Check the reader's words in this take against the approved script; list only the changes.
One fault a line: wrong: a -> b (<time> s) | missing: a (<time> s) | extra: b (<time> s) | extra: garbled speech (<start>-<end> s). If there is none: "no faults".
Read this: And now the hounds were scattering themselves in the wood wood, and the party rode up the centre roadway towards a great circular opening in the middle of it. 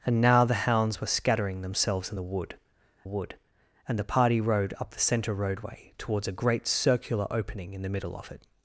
no faults